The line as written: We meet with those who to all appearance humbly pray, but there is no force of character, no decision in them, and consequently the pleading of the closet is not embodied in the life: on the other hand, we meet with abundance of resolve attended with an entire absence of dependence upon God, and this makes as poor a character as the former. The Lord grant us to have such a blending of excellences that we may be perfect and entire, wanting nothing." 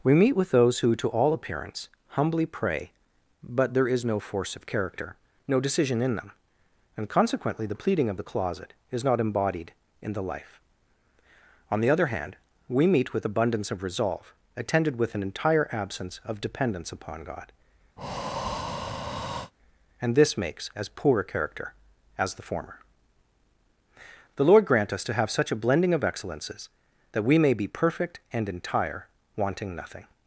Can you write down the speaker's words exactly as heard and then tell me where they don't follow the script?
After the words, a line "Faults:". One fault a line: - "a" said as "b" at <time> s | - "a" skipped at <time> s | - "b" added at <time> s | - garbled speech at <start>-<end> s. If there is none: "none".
We meet with those who to all appearance humbly pray, but there is no force of character, no decision in them, and consequently the pleading of the closet is not embodied in the life: on the other hand, we meet with abundance of resolve attended with an entire absence of dependence upon God, and this makes as poor a character as the former. The Lord grant us to have such a blending of excellences that we may be perfect and entire, wanting nothing."
Faults:
none